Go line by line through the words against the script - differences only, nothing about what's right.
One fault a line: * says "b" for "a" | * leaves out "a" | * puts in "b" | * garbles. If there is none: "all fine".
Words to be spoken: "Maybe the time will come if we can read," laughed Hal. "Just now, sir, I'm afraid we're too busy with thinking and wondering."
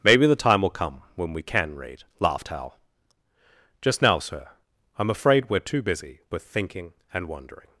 * says "when" for "if"